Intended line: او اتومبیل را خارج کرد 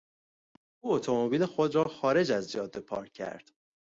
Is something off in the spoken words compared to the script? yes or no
yes